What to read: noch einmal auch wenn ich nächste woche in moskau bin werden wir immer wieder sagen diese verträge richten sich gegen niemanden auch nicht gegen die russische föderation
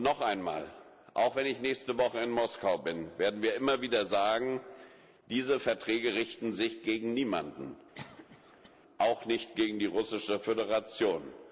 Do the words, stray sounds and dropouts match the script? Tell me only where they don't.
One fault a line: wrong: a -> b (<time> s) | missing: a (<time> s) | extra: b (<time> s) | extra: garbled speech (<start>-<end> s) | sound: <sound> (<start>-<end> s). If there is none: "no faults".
sound: cough (7.9-8.7 s)